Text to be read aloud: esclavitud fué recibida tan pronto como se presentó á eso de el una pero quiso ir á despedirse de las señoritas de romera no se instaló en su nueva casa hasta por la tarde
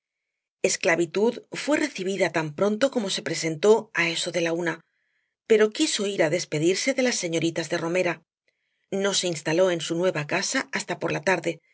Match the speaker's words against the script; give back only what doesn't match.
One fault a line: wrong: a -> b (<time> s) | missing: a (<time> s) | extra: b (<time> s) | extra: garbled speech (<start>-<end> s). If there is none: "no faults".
wrong: el -> la (4.4 s)